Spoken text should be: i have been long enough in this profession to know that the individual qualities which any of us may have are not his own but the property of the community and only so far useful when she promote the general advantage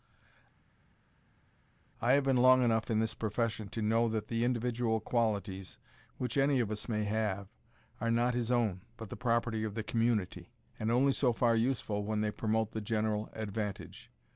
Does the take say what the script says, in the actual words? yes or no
no